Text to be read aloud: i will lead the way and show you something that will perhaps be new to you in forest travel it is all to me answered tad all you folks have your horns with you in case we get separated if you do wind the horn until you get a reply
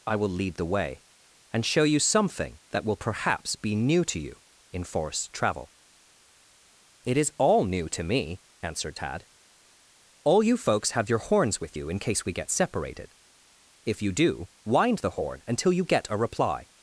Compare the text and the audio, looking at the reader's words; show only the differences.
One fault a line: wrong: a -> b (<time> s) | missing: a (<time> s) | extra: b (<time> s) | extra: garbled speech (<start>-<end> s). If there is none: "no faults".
extra: new (7.7 s)